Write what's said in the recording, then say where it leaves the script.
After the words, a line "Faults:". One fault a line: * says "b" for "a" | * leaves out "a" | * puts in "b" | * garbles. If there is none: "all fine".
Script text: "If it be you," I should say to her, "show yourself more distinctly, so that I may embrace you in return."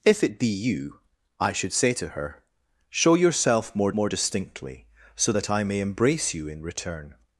"If it be you," I should say to her, "show yourself more more distinctly, so that I may embrace you in return."
Faults:
* puts in "more"